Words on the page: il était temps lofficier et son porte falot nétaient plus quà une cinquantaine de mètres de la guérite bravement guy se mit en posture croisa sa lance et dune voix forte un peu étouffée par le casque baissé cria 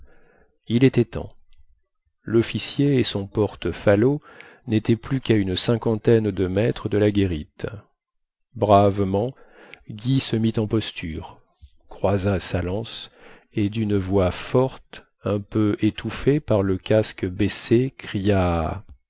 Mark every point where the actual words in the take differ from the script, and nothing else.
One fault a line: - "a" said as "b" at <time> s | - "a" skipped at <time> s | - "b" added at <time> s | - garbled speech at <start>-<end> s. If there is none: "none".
none